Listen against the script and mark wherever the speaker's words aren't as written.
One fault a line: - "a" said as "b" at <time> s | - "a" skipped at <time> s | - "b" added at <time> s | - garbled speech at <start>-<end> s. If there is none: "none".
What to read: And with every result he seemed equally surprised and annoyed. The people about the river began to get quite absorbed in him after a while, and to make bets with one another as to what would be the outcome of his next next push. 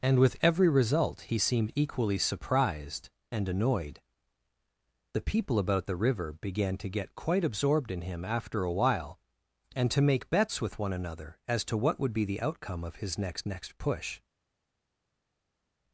none